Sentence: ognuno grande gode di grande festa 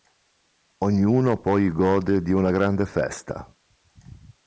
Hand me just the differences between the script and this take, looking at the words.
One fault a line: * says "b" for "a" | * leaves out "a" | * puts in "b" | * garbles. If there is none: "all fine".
* says "poi" for "grande"
* puts in "una"